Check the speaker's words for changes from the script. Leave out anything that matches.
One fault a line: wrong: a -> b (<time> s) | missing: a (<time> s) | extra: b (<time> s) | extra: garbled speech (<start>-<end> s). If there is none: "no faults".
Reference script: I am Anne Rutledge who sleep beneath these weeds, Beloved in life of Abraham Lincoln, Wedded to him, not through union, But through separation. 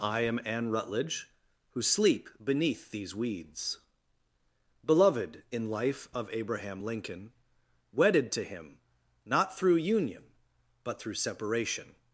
no faults